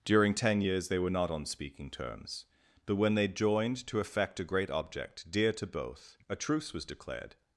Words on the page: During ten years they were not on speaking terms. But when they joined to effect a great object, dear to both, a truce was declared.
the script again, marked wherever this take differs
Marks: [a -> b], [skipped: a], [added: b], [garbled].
During ten years they were not on speaking terms. But when they joined to effect a great object, dear to both, a truce was declared.